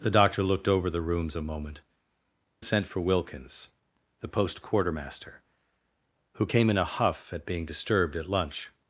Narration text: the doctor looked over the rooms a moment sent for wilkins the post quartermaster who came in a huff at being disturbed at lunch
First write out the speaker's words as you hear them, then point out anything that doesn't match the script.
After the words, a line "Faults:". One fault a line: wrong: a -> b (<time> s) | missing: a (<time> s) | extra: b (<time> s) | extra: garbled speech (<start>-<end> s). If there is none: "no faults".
the doctor looked over the rooms a moment sent for wilkins the post quartermaster who came in a huff at being disturbed at lunch
Faults:
no faults